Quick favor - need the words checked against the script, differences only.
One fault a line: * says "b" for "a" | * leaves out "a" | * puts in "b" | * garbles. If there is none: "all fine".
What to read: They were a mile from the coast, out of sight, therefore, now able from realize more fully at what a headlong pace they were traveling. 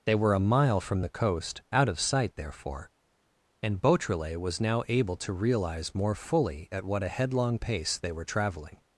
* puts in "and Beautrelet was"
* says "to" for "from"